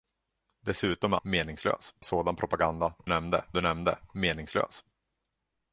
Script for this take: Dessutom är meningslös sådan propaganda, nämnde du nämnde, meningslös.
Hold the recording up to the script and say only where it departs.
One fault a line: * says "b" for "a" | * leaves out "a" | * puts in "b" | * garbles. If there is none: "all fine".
all fine